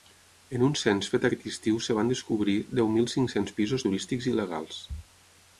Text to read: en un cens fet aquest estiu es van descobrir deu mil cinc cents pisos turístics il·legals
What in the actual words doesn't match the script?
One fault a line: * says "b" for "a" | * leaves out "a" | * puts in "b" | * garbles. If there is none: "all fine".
all fine